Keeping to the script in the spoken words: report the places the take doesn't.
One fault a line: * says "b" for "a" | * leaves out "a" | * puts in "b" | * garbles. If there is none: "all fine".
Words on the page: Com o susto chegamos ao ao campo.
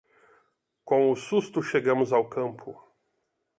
* leaves out "ao"